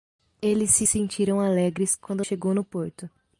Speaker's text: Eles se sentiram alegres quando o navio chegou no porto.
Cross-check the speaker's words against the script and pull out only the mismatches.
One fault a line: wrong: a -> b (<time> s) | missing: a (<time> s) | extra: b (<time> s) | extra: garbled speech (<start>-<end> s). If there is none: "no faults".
missing: navio (2.2 s)